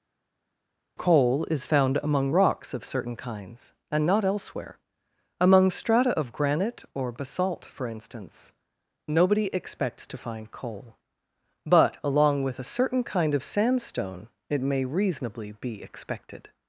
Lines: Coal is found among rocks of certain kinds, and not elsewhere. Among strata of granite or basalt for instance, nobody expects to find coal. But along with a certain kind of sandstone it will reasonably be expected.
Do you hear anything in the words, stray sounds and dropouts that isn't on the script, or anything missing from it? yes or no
yes